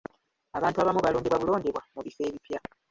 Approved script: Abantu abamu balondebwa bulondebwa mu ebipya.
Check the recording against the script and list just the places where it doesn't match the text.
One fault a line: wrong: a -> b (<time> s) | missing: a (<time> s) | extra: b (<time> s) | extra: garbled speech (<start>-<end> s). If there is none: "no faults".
extra: bifo (2.0 s)